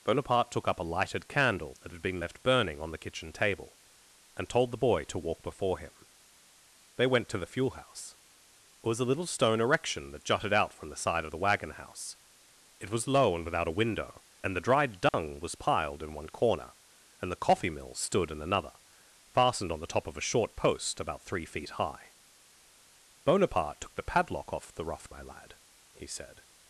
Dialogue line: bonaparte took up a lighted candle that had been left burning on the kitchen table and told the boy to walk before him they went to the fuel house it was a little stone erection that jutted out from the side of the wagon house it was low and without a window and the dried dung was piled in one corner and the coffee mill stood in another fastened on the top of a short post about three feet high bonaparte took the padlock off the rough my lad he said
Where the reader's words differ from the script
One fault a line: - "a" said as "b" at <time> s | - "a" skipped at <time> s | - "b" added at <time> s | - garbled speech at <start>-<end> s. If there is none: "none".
none